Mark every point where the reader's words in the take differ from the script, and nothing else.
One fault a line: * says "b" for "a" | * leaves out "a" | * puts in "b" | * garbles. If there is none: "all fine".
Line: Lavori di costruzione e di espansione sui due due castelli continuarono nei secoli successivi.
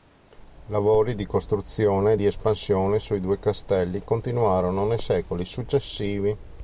* leaves out "due"